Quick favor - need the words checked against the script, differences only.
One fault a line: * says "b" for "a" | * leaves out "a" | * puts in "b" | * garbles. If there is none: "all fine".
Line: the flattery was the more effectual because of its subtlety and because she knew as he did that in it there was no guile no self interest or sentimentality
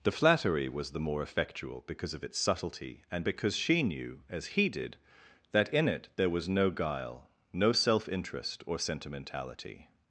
all fine